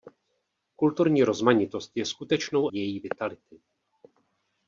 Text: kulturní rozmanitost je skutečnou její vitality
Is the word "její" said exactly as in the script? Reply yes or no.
yes